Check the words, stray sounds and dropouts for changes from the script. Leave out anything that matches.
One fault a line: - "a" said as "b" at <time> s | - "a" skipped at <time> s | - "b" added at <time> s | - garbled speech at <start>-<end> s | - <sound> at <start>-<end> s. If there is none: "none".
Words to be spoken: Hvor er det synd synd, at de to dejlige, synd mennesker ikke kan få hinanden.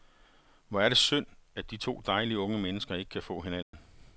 - "synd" skipped at 1.2 s
- "synd" said as "unge" at 2.4 s
- dropout at 3.6-3.7 s